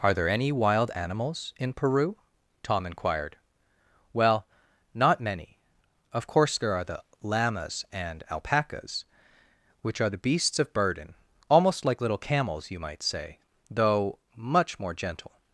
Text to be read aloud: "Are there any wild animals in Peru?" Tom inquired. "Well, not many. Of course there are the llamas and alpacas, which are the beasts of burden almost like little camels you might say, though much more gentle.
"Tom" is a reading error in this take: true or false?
false